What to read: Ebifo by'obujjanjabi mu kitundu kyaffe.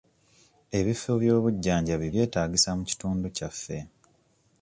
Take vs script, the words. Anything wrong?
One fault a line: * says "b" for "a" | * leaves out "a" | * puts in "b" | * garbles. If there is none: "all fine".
* puts in "byetaagisa"